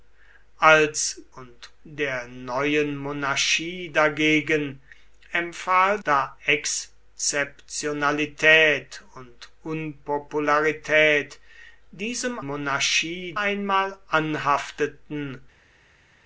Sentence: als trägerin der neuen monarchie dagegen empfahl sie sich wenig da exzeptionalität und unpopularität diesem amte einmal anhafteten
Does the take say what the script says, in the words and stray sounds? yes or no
no